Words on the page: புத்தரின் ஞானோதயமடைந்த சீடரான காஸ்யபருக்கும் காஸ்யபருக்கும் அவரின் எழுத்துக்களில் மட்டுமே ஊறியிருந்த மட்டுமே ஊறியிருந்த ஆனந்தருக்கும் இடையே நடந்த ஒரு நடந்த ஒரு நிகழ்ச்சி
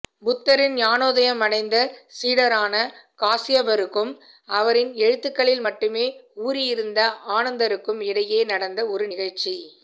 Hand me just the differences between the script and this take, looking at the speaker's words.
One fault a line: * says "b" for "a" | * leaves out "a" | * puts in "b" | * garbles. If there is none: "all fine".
* leaves out "காஸ்யபருக்கும்"
* leaves out "மட்டுமே ஊறியிருந்த"
* leaves out "நடந்த ஒரு"